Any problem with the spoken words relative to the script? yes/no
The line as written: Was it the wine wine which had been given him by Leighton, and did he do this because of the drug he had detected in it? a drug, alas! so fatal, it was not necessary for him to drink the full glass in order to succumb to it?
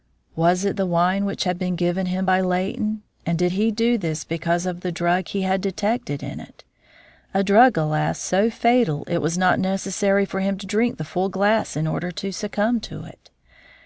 yes